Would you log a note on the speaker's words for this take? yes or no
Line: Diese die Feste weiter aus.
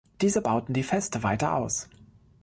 yes